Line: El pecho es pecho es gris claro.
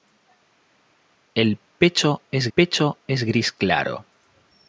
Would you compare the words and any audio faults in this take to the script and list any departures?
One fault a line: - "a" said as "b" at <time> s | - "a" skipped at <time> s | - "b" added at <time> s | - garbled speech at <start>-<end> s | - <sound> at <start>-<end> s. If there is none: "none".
none